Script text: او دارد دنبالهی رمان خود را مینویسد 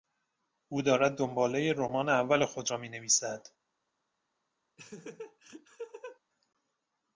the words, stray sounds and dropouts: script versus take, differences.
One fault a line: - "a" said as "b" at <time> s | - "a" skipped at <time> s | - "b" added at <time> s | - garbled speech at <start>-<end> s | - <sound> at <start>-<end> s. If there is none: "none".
- "اول" added at 2.1 s
- laugh at 4.8-6.2 s